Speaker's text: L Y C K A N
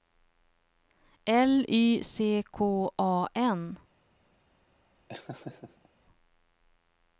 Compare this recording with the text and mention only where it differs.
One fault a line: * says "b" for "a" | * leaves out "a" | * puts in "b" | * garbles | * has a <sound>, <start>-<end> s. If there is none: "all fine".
* has a laugh, 5.1-5.9 s